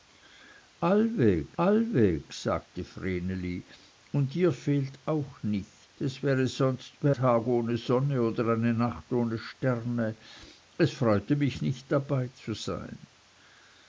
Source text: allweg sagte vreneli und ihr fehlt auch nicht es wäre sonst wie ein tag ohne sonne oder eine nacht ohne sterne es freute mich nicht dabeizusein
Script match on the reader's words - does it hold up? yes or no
no